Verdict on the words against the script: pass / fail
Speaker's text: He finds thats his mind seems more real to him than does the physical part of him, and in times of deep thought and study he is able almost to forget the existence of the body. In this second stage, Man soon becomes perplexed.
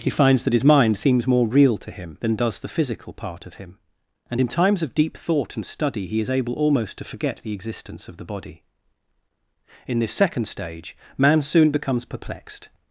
fail